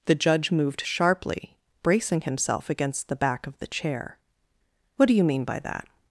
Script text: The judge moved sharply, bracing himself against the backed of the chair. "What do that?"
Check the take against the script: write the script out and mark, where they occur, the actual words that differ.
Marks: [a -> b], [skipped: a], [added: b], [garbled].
The judge moved sharply, bracing himself against the [backed -> back] of the chair. "What do [added: you mean by] that?"